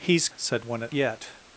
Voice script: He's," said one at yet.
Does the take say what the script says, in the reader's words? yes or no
yes